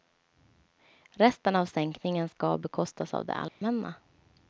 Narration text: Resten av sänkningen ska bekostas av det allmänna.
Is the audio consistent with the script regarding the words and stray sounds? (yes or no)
no